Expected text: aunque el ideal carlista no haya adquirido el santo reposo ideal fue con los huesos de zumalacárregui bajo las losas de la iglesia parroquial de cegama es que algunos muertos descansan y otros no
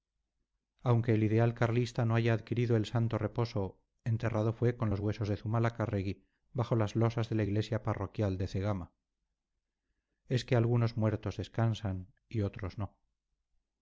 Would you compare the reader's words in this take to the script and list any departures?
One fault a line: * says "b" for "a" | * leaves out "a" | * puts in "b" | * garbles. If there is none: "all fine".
* says "enterrado" for "ideal"